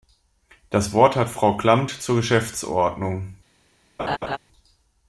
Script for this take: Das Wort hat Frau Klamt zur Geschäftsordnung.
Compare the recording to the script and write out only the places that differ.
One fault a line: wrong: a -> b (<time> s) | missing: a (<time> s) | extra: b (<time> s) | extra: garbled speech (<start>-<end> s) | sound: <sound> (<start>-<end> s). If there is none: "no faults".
sound: laugh (4.0-4.4 s)